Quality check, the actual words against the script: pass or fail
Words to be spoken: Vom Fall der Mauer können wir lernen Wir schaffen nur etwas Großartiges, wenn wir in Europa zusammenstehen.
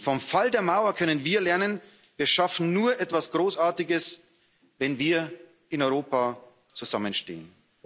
pass